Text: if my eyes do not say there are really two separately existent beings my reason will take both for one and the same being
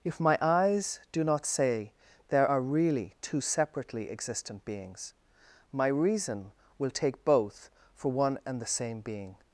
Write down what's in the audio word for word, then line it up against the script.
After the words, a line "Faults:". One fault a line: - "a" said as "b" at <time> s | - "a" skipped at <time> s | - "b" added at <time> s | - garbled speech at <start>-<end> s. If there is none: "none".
if my eyes do not say there are really two separately existent beings my reason will take both for one and the same being
Faults:
none